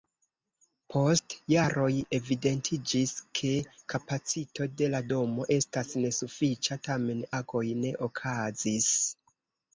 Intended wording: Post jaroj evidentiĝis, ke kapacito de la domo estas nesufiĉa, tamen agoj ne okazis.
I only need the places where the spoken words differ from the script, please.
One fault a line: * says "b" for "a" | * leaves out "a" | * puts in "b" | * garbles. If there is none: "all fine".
all fine